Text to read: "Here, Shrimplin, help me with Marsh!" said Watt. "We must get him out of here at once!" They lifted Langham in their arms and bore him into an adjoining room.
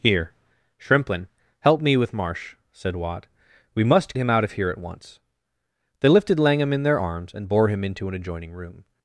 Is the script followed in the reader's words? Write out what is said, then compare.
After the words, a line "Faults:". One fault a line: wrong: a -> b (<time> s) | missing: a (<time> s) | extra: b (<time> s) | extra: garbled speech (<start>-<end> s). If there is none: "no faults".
"Here, Shrimplin, help me with Marsh!" said Watt. "We must him out of here at once!" They lifted Langham in their arms and bore him into an adjoining room.
Faults:
missing: get (4.2 s)